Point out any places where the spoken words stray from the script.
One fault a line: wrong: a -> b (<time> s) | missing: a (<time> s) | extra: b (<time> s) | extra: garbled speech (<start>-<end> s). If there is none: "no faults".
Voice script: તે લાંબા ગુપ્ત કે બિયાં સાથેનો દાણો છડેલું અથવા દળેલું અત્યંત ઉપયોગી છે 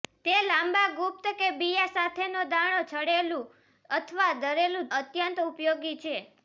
no faults